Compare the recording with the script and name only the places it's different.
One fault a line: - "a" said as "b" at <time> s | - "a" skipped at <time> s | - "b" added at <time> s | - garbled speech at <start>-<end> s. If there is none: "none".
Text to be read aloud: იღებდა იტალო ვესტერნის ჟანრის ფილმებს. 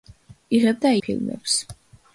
- "იტალო ვესტერნის ჟანრის" skipped at 0.9 s